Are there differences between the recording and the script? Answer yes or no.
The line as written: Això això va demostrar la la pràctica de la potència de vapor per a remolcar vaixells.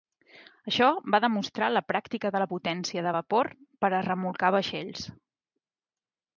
yes